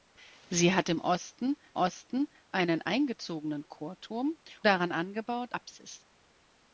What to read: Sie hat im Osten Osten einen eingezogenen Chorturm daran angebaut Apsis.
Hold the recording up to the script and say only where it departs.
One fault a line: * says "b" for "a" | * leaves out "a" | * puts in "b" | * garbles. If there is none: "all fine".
all fine